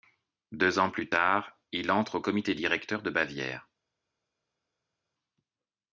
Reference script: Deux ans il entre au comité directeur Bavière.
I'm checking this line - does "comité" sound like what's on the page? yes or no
yes